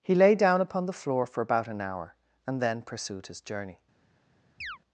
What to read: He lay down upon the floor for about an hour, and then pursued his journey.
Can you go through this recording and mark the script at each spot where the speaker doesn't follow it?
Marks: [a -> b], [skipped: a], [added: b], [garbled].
He lay down upon the floor for about an hour, and then pursued his journey.